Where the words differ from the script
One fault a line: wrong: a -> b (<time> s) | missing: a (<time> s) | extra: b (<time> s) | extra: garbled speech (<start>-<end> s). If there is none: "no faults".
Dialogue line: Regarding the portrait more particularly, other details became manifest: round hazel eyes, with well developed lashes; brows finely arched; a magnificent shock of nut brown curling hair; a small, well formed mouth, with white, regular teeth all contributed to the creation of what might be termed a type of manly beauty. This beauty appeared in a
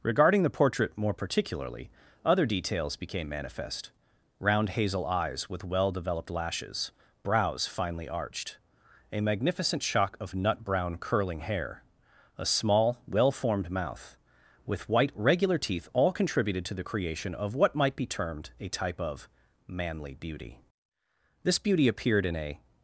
no faults